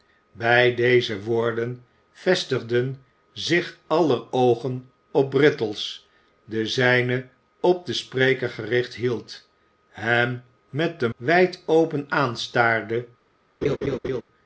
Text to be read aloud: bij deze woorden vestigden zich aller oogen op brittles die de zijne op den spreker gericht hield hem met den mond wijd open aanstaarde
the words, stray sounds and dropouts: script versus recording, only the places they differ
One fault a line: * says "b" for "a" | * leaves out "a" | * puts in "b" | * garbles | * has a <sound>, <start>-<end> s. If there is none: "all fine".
* leaves out "die"
* leaves out "mond"
* has a laugh, 13.6-14.2 s